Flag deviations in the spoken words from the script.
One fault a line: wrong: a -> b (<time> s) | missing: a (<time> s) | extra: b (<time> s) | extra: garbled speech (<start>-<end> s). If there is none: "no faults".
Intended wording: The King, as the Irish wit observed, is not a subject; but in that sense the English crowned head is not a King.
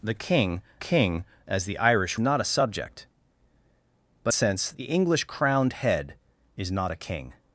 extra: King (0.8 s)
missing: wit observed is (2.2 s)
missing: in that (4.3 s)